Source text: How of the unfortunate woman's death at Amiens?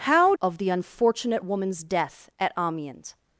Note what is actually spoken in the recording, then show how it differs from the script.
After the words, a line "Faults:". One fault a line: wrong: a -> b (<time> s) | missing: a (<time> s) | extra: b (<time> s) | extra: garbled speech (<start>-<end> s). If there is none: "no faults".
How of the unfortunate woman's death at Amiens?
Faults:
no faults